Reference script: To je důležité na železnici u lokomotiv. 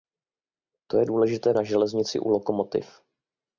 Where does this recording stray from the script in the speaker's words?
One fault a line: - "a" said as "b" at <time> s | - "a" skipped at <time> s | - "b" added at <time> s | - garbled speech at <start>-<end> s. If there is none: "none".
none